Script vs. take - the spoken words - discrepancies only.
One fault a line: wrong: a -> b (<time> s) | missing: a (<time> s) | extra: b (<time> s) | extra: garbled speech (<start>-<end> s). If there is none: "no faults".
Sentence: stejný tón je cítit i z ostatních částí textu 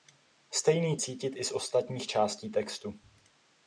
missing: tón je (1.0 s)